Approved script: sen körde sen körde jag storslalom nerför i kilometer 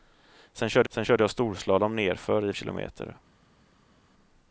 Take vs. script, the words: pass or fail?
pass